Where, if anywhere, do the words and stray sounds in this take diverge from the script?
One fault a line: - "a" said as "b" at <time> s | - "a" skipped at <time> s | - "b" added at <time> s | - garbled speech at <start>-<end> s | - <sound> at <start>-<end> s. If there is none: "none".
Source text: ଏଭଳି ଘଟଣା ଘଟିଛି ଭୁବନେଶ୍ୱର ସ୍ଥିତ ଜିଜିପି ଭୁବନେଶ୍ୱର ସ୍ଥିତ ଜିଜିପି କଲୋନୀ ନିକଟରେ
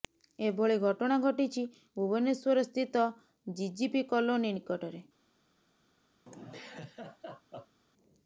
- "ଭୁବନେଶ୍ୱର ସ୍ଥିତ ଜିଜିପି" skipped at 4.1 s
- laugh at 6.3-7.8 s